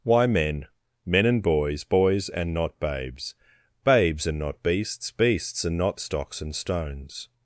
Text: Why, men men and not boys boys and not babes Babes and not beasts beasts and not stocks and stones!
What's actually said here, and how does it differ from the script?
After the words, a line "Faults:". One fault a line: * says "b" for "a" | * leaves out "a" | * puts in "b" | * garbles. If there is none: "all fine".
Why, men men and boys boys and not babes Babes and not beasts beasts and not stocks and stones!
Faults:
* leaves out "not"